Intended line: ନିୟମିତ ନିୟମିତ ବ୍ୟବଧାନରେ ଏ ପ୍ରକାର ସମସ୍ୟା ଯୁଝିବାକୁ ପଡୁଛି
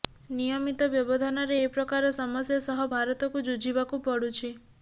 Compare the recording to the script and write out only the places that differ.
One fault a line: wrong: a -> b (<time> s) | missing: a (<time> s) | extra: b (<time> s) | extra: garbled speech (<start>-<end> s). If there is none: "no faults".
missing: ନିୟମିତ (0.9 s)
extra: ସହ ଭାରତକୁ (2.7 s)